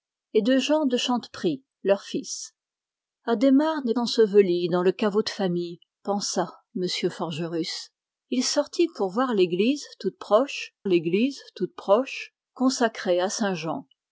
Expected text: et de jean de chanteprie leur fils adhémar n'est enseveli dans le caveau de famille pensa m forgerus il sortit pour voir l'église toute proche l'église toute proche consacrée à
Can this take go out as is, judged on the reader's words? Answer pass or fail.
pass